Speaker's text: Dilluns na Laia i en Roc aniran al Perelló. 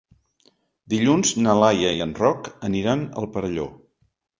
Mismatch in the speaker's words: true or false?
false